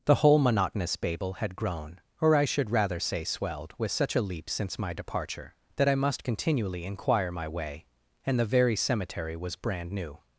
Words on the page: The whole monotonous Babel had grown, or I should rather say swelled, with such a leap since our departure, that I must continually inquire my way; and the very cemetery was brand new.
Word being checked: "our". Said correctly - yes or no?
no